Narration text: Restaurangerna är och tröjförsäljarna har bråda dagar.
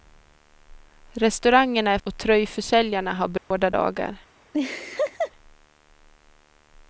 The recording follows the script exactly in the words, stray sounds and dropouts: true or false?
false